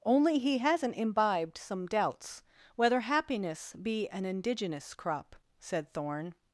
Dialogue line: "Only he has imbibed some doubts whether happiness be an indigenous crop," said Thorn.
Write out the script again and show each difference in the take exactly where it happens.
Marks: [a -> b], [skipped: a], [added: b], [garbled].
"Only he [has -> hasn't] imbibed some doubts whether happiness be an indigenous crop," said Thorn.